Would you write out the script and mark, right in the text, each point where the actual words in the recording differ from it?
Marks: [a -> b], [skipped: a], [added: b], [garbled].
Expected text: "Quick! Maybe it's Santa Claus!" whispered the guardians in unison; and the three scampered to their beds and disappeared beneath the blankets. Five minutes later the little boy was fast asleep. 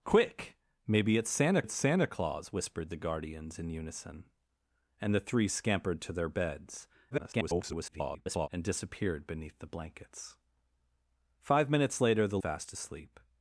"Quick! Maybe it's Santa [added: it's Santa] Claus!" whispered the guardians in unison; and the three scampered to their beds [garbled] and disappeared beneath the blankets. Five minutes later the [skipped: little boy was] fast asleep.